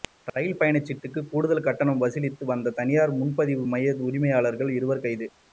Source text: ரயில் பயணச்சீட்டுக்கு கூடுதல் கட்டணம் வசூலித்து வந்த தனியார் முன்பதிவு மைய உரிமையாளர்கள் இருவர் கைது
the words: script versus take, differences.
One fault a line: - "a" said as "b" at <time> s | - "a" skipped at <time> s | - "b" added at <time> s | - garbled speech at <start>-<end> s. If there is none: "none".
none